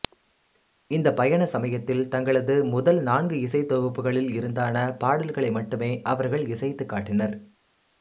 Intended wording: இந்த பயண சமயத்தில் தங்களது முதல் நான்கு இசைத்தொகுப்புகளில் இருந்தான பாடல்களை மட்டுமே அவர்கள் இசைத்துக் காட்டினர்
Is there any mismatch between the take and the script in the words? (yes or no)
no